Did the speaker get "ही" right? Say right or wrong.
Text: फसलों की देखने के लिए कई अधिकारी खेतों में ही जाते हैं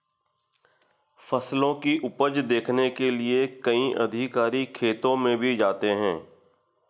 wrong